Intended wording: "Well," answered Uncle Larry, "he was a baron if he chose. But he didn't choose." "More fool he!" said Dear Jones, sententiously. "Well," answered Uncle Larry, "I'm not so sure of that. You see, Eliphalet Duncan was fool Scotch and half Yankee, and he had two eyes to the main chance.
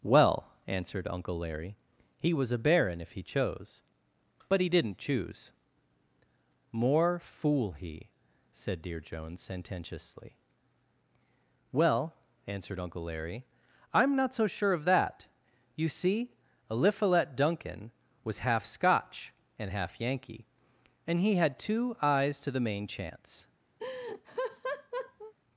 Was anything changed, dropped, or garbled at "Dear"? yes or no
no